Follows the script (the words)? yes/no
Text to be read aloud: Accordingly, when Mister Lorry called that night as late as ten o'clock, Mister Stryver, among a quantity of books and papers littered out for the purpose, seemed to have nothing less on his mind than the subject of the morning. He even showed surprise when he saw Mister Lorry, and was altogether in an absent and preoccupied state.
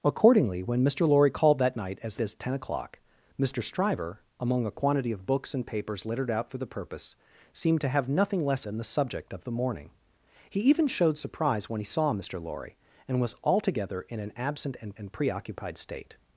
no